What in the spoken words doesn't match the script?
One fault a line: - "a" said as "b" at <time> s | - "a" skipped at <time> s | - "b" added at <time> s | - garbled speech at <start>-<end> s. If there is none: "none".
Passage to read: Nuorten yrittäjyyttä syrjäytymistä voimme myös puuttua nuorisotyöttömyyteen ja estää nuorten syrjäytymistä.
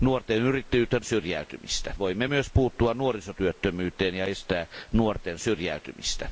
none